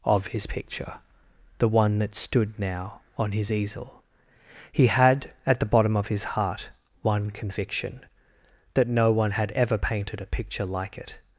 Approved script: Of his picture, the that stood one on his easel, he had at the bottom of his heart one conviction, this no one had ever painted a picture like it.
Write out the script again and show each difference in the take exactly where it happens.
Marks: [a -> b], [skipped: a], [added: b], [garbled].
Of his picture, the [added: one] that stood [one -> now] on his easel, he had at the bottom of his heart one conviction, [this -> that] no one had ever painted a picture like it.